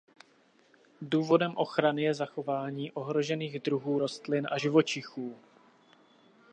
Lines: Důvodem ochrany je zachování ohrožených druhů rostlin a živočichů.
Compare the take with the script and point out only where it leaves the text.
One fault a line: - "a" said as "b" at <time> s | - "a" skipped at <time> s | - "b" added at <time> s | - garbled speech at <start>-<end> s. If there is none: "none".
none